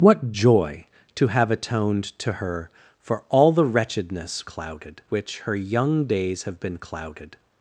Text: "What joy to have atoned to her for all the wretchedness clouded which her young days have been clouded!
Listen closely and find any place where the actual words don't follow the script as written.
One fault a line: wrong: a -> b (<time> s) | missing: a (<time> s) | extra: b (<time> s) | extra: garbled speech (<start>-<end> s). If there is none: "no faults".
no faults